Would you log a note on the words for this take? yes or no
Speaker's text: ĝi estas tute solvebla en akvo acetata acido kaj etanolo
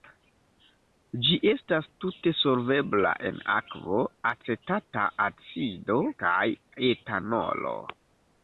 no